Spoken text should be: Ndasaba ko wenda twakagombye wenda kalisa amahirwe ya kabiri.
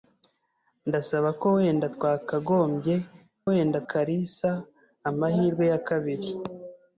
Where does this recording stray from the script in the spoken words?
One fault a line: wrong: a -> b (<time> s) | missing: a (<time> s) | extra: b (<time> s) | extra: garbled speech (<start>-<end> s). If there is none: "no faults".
no faults